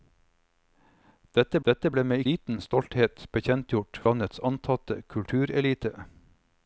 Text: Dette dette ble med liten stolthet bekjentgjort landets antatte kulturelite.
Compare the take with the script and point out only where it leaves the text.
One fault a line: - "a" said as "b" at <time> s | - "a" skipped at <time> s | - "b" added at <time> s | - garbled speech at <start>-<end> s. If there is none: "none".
none